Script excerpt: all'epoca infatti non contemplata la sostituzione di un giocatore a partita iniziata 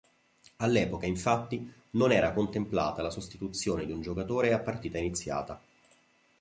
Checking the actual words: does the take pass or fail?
fail